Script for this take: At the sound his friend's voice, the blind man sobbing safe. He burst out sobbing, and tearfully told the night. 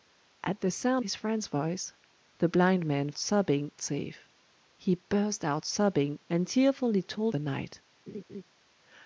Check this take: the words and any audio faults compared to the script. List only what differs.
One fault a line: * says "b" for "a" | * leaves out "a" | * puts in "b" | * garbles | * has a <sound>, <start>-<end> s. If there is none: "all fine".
* has a laugh, 8.1-8.4 s